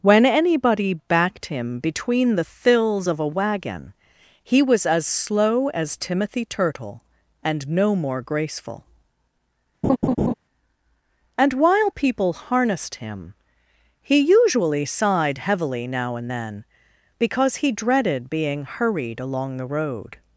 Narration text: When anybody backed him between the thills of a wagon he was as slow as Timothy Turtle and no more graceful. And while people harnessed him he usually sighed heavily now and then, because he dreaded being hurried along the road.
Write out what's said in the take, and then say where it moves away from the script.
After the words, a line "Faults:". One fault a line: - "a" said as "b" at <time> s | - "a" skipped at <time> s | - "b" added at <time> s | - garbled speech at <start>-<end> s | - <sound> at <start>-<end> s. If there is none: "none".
When anybody backed him between the thills of a wagon he was as slow as Timothy Turtle and no more graceful. And while people harnessed him he usually sighed heavily now and then, because he dreaded being hurried along the road.
Faults:
- laugh at 9.8-10.3 s